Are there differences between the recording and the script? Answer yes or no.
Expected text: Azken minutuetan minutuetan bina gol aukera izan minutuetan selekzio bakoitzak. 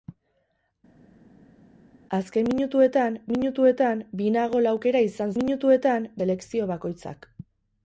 no